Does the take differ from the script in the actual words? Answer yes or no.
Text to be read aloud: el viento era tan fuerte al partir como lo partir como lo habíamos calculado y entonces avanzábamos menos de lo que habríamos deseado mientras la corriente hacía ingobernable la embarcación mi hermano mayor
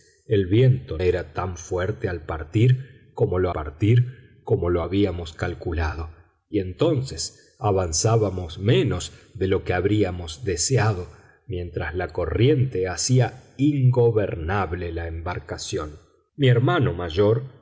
no